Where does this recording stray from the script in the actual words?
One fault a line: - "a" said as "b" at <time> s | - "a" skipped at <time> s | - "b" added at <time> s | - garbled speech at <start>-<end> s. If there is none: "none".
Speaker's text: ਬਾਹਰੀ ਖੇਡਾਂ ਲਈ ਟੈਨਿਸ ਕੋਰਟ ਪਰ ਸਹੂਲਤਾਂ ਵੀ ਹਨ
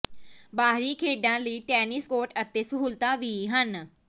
- "ਪਰ" said as "ਅਤੇ" at 2.4 s